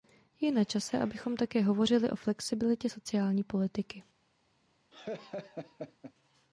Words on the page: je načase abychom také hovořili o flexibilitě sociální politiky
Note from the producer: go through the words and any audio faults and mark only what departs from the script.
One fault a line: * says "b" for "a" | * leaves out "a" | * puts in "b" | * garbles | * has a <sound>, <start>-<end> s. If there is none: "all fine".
* has a laugh, 4.9-6.1 s